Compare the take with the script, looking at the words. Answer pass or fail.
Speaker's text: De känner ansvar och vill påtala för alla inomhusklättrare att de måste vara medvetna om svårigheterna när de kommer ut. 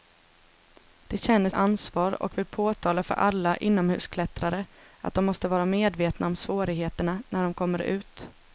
pass